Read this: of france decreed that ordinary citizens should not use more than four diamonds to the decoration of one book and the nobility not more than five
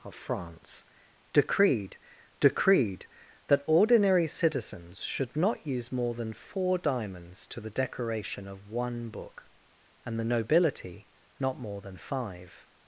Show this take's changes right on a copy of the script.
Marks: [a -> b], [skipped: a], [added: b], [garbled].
of france decreed [added: decreed] that ordinary citizens should not use more than four diamonds to the decoration of one book and the nobility not more than five